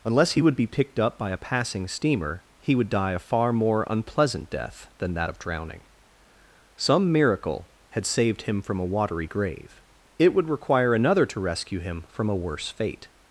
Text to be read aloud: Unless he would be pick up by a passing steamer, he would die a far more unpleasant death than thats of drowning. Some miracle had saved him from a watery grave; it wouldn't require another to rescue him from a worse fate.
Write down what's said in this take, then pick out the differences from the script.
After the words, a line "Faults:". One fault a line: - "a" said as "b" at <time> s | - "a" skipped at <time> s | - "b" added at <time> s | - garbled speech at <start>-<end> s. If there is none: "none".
Unless he would be picked up by a passing steamer, he would die a far more unpleasant death than that of drowning. Some miracle had saved him from a watery grave; it would require another to rescue him from a worse fate.
Faults:
- "pick" said as "picked" at 0.7 s
- "thats" said as "that" at 5.1 s
- "wouldn't" said as "would" at 10.3 s